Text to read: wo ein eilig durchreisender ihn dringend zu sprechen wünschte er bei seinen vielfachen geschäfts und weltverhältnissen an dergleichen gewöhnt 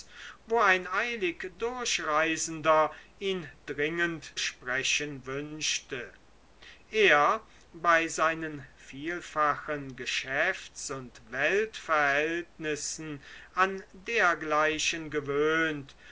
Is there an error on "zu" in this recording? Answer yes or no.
yes